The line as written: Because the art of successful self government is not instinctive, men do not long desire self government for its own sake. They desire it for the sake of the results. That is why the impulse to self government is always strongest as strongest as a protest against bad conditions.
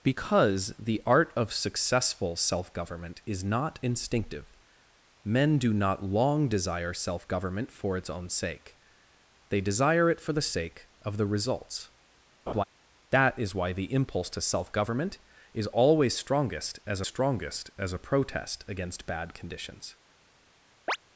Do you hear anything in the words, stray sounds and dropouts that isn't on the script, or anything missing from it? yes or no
yes